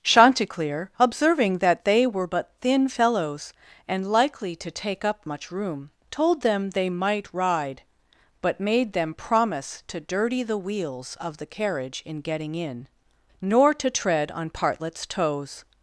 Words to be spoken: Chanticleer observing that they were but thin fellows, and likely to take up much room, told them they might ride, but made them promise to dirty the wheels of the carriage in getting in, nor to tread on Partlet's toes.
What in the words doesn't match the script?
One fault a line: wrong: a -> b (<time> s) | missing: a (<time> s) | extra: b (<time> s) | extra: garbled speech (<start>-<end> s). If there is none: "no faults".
no faults